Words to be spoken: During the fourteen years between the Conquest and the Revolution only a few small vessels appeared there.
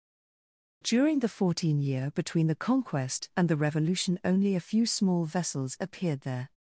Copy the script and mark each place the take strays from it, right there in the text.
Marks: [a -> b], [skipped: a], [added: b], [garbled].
During the fourteen [years -> year] between the Conquest and the Revolution only a few small vessels appeared there.